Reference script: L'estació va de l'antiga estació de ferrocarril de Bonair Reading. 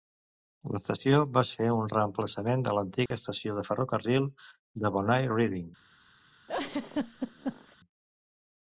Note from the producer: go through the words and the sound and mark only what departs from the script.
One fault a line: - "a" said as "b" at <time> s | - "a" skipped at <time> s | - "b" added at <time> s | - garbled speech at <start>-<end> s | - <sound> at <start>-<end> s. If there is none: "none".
- "ser un reemplaçament" added at 1.5 s
- dropout at 3.1-3.1 s
- laugh at 6.5-7.8 s